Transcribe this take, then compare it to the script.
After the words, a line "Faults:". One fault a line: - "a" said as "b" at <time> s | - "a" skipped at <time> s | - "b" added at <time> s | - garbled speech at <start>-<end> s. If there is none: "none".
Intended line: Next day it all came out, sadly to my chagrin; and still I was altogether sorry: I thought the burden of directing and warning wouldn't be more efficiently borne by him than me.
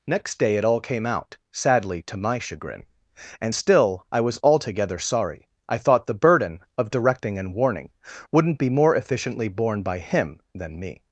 Next day it all came out, sadly to my chagrin; and still I was altogether sorry: I thought the burden of directing and warning wouldn't be more efficiently borne by him than me.
Faults:
none